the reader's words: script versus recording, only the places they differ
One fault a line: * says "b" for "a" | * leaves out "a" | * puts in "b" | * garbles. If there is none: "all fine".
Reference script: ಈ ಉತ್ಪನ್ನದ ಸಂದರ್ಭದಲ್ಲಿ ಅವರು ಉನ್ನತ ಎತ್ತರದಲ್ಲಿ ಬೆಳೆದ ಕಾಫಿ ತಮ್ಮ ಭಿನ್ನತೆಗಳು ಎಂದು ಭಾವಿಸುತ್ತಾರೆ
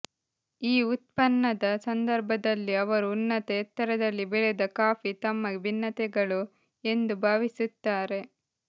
all fine